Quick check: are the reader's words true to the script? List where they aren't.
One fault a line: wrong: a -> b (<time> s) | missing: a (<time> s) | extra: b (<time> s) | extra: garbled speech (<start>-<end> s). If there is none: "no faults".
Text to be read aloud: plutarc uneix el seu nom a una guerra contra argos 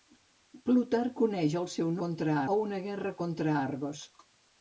wrong: nom -> contra (2.1 s)